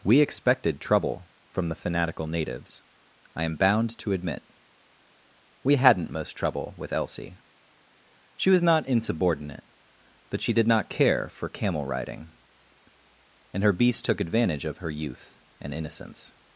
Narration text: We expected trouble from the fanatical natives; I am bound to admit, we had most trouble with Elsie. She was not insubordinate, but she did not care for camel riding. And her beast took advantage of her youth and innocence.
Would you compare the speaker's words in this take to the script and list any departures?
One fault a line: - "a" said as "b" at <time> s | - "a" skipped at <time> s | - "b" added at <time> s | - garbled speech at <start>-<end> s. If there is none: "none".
- "had" said as "hadn't" at 5.8 s